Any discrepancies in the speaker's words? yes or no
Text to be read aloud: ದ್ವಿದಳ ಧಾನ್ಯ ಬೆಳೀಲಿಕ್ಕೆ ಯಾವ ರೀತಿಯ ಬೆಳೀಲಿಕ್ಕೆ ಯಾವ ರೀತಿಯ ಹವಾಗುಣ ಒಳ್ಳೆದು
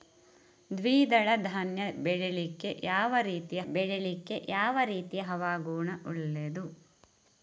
no